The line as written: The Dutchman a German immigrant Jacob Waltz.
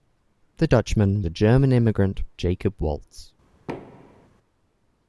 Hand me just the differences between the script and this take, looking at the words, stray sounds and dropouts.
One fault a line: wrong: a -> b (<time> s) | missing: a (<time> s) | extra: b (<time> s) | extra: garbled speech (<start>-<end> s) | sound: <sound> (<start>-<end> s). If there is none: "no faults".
sound: thud (3.7-4.3 s)